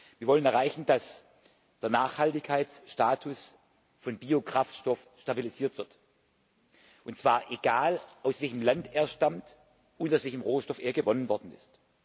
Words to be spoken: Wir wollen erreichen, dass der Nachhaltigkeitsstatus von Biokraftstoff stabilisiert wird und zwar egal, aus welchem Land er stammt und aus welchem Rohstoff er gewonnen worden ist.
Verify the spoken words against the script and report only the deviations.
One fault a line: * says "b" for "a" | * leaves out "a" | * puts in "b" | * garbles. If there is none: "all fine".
all fine